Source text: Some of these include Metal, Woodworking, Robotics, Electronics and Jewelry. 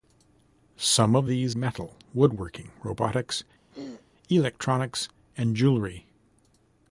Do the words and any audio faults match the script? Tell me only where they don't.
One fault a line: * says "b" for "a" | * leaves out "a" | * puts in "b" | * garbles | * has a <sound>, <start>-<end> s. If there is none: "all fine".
* leaves out "include"
* has a throat clearing, 3.7-4.1 s